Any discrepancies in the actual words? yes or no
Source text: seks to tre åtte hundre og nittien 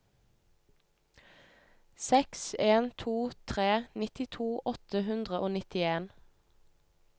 yes